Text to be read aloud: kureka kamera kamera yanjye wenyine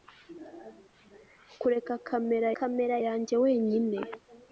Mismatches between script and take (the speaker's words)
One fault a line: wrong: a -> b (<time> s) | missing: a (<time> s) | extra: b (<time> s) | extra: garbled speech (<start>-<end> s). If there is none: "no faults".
no faults